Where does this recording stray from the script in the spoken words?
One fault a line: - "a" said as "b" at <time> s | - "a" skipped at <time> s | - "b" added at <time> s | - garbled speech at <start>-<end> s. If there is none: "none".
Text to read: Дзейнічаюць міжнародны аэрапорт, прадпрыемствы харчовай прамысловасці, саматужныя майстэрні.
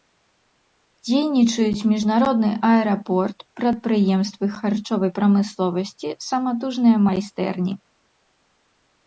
none